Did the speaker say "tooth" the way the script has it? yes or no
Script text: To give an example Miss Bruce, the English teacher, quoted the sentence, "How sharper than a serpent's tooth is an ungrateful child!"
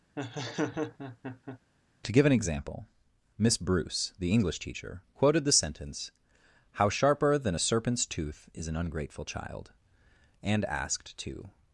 yes